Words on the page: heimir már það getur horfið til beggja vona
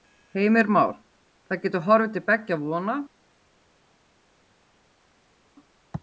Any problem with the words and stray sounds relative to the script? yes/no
no